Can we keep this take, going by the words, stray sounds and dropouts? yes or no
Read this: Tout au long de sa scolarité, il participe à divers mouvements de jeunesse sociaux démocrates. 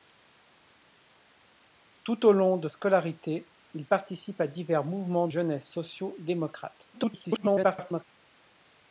no